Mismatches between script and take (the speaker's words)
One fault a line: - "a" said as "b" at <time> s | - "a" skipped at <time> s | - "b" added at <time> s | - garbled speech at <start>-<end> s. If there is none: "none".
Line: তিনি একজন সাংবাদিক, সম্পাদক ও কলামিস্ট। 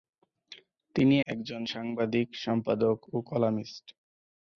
none